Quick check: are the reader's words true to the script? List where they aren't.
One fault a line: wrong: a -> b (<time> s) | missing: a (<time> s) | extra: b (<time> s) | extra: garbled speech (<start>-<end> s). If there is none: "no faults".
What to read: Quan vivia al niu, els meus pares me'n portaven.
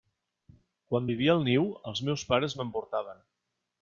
no faults